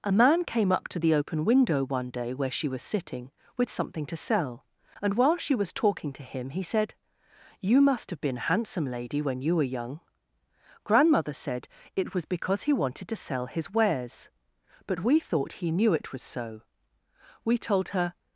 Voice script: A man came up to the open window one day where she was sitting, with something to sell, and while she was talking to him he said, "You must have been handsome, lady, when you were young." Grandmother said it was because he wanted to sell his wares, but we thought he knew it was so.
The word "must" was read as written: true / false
true